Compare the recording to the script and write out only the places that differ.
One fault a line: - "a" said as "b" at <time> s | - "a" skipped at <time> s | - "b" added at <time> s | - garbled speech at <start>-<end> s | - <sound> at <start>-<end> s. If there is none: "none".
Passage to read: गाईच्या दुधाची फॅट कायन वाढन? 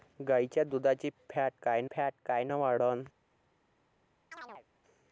- "फॅट कायन" added at 1.9 s
- chirp at 4.3-4.7 s